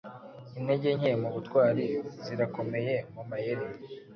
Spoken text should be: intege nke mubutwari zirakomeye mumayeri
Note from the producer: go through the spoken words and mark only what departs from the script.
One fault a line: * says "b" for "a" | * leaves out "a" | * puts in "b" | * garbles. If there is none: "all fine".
all fine